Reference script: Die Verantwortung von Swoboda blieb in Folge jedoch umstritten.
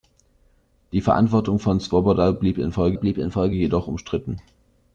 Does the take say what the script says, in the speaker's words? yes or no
no